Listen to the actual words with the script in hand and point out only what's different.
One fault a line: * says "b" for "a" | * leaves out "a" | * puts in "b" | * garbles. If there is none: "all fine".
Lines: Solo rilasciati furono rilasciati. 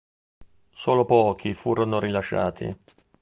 * says "pochi" for "rilasciati"